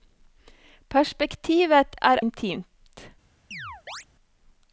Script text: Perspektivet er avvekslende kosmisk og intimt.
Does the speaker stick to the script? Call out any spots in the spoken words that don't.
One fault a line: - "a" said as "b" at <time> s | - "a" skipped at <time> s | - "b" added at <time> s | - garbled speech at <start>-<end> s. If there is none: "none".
- "avvekslende kosmisk og" skipped at 2.2 s